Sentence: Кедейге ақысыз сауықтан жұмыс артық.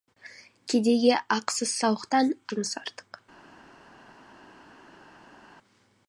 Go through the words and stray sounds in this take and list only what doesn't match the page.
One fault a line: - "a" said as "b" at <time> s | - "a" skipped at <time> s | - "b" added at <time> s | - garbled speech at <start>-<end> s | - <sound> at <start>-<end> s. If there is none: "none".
none